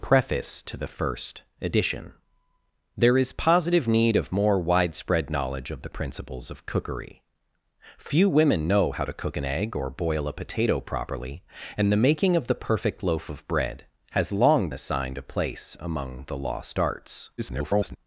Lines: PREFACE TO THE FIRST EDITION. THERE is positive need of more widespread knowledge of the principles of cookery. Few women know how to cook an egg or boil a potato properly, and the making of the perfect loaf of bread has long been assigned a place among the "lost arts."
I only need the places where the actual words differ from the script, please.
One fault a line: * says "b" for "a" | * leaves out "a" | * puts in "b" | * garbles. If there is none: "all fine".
* leaves out "been"
* garbles